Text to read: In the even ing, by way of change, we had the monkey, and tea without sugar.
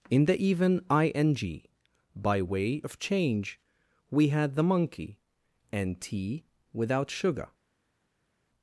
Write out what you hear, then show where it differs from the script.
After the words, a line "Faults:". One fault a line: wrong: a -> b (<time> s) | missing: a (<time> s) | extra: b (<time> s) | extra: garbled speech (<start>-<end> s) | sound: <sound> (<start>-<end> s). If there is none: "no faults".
In the even ing, by way of change, we had the monkey, and tea without sugar.
Faults:
no faults